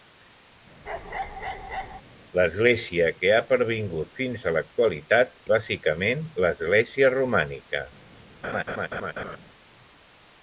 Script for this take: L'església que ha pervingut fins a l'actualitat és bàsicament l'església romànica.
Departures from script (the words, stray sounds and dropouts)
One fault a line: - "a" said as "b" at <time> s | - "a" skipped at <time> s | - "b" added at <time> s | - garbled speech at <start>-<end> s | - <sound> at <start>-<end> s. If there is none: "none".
- bark at 0.9-2.0 s
- "és" skipped at 5.3 s
- laugh at 8.4-9.4 s